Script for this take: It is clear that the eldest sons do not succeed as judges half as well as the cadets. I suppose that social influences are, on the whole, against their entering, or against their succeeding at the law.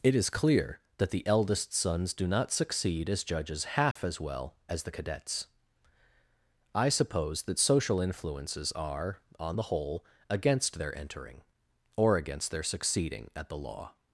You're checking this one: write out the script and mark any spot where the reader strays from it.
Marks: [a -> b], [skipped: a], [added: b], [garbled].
It is clear that the eldest sons do not succeed as judges half as well as the cadets. I suppose that social influences are, on the whole, against their entering, or against their succeeding at the law.